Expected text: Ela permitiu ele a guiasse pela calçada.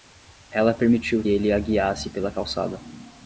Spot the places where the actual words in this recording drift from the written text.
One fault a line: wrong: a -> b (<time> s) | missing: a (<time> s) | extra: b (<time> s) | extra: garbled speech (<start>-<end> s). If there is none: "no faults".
no faults